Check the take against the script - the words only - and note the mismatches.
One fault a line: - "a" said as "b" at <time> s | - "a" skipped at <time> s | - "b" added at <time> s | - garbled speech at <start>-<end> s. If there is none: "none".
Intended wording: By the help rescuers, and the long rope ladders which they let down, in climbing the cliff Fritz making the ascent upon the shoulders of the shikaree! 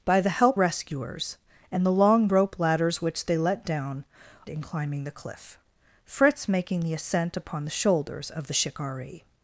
none